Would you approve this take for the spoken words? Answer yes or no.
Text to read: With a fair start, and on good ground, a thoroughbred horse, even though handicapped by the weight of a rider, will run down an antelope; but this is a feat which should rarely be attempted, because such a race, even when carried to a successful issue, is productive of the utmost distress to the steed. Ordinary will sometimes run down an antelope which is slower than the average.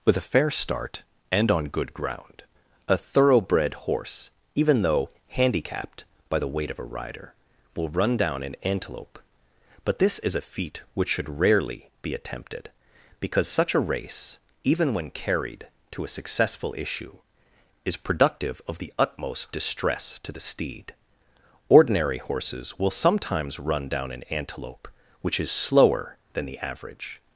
no